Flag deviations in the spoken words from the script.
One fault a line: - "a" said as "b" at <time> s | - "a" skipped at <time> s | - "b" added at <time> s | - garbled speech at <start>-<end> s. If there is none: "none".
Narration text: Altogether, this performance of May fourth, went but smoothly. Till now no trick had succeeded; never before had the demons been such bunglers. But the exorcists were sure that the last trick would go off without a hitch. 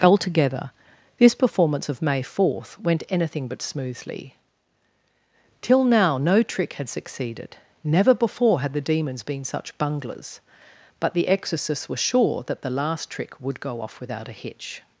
- "anything" added at 3.1 s